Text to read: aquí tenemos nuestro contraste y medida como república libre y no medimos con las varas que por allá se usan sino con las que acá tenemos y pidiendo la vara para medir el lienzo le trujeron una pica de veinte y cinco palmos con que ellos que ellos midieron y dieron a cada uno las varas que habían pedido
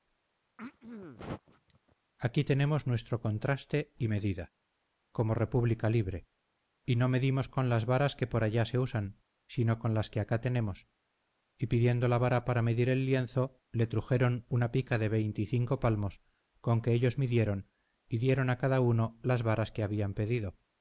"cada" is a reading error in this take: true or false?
false